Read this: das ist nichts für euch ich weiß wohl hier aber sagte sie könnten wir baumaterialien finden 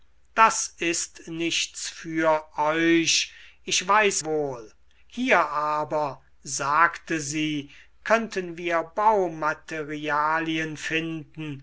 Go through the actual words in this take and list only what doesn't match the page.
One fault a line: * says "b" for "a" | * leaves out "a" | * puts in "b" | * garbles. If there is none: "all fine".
all fine